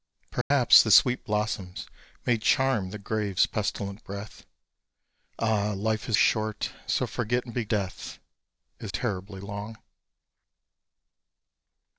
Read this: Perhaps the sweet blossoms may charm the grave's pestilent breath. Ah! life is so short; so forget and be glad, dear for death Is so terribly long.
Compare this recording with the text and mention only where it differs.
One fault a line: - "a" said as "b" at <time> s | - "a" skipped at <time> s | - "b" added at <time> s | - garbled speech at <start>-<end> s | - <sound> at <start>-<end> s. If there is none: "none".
- dropout at 0.4-0.5 s
- "so" skipped at 6.2 s
- "glad dear for" skipped at 7.6 s
- "so" skipped at 8.9 s